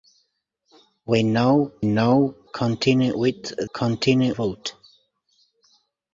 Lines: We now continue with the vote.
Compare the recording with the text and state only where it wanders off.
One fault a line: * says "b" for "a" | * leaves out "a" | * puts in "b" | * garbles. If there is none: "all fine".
* puts in "now"
* says "continue" for "the"